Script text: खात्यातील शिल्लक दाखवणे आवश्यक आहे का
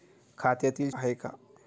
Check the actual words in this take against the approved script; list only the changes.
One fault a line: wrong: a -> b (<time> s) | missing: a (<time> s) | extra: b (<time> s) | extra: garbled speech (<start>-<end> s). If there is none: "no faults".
missing: शिल्लक दाखवणे आवश्यक (0.9 s)